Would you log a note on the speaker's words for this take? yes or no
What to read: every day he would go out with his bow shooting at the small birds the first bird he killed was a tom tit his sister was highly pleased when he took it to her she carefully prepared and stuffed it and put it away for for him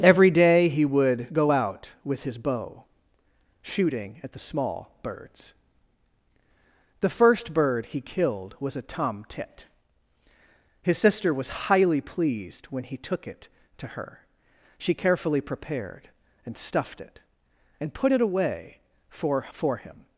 no